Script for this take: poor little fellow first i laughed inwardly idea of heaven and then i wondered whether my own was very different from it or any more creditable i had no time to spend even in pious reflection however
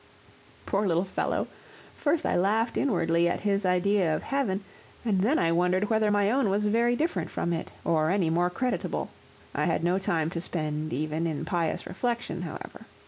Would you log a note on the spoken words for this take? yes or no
yes